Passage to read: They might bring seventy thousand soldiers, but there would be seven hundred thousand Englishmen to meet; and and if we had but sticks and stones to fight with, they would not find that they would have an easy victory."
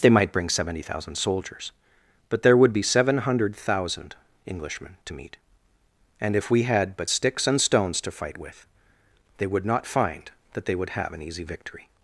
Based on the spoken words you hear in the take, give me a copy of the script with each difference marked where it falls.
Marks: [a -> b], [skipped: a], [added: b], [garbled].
They might bring seventy thousand soldiers, but there would be seven hundred thousand Englishmen to meet; and [skipped: and] if we had but sticks and stones to fight with, they would not find that they would have an easy victory."